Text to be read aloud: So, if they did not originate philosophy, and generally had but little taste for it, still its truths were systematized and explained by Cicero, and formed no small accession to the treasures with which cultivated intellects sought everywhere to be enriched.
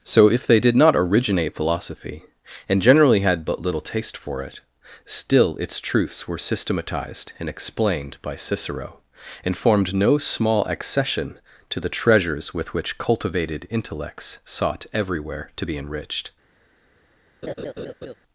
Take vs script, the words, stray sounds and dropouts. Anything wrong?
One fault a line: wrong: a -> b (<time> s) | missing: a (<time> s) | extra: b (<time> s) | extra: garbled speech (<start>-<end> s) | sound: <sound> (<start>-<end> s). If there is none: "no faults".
sound: laugh (17.4-18.1 s)